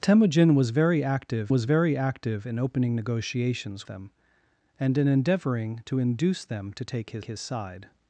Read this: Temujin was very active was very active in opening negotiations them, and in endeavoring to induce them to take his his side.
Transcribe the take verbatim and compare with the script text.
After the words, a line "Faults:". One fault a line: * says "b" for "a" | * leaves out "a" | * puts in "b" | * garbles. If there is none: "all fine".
Temujin was very active was very active in opening negotiations them, and in endeavoring to induce them to take his his side.
Faults:
all fine